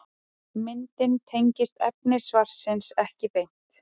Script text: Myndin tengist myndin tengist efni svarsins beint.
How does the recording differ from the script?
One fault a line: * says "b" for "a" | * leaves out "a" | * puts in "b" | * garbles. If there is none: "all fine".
* leaves out "myndin tengist"
* puts in "ekki"